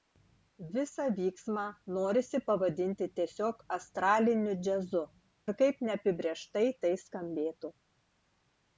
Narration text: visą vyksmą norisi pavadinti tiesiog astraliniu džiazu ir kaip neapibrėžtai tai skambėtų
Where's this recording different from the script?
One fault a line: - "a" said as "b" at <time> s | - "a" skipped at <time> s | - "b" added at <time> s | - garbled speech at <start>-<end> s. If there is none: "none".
none